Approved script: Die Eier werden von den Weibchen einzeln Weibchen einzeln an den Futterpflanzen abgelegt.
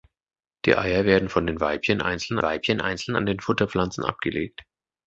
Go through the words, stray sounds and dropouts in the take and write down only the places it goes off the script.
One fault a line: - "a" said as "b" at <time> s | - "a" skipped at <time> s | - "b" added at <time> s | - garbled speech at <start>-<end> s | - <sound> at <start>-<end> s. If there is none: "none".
none